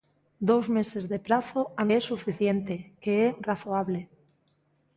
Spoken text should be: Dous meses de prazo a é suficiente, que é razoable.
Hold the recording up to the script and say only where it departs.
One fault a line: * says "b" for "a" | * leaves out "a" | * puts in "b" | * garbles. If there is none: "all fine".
all fine